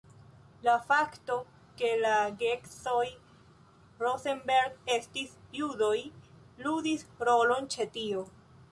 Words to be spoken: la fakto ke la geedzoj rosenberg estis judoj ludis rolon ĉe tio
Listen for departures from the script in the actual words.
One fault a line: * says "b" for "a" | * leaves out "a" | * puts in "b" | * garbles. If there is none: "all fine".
all fine